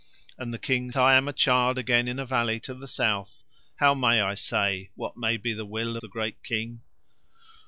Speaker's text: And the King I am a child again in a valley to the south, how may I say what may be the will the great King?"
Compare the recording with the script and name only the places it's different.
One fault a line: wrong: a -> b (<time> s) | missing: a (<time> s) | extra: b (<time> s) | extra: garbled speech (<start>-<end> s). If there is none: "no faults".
no faults